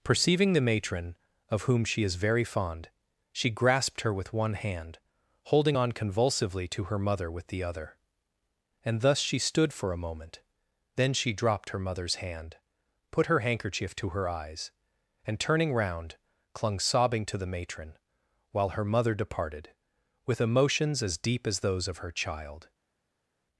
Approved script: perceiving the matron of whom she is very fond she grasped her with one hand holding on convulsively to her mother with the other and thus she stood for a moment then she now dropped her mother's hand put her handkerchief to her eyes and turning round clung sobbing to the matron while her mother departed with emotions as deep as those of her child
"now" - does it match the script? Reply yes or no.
no